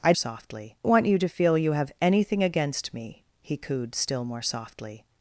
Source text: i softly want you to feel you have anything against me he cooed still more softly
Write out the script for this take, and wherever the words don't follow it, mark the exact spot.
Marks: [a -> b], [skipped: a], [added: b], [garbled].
i softly want you to feel you have anything against me he cooed still more softly